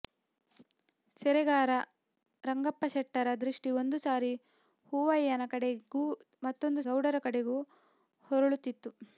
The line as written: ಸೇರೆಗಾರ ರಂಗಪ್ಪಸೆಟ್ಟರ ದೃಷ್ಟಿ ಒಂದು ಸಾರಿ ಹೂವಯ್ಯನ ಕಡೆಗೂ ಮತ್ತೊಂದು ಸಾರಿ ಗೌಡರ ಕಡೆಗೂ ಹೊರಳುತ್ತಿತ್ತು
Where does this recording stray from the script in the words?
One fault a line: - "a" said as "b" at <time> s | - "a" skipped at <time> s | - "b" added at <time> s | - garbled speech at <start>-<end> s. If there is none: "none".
- "ಸಾರಿ" skipped at 6.8 s